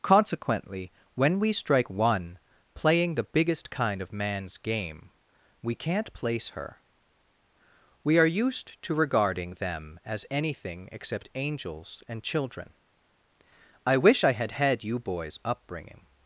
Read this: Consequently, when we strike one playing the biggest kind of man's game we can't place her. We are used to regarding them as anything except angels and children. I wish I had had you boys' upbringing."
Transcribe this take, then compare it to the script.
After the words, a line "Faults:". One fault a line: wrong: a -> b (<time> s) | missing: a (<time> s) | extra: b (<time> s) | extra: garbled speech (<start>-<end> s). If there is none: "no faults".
Consequently, when we strike one playing the biggest kind of man's game we can't place her. We are used to regarding them as anything except angels and children. I wish I had had you boys' upbringing."
Faults:
no faults